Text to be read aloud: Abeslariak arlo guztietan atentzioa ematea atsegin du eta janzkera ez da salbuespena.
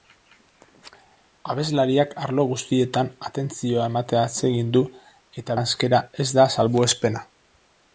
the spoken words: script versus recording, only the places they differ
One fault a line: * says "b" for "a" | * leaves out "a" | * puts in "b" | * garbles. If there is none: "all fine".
all fine